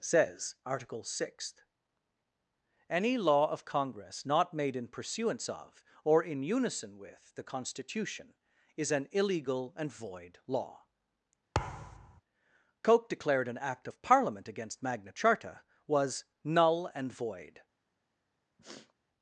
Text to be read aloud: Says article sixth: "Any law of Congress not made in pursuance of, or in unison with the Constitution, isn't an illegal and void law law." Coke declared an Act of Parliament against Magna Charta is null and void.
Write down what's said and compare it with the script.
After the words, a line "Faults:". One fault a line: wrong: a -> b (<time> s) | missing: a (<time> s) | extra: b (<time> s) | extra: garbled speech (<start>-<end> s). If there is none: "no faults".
Says article sixth: "Any law of Congress not made in pursuance of, or in unison with the Constitution, is an illegal and void law." Coke declared an Act of Parliament against Magna Charta was null and void.
Faults:
wrong: isn't -> is (8.8 s)
missing: law (10.8 s)
wrong: is -> was (15.9 s)